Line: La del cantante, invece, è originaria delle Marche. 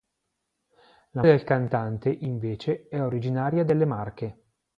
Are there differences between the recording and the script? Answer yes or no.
no